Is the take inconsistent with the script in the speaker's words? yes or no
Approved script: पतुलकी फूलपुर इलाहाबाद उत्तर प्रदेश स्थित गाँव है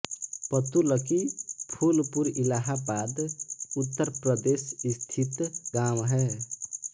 no